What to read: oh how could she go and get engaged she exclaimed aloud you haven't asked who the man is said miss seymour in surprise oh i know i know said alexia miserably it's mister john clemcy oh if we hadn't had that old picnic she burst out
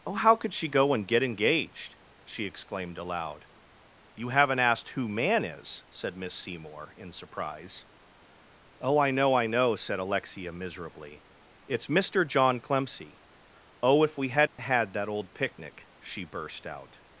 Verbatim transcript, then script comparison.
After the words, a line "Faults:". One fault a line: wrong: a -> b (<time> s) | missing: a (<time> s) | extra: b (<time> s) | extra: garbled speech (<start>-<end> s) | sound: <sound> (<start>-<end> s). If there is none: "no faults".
oh how could she go and get engaged she exclaimed aloud you haven't asked who man is said miss seymour in surprise oh i know i know said alexia miserably it's mister john clemcy oh if we hadn't had that old picnic she burst out
Faults:
missing: the (5.1 s)
sound: dropout (14.5-14.6 s)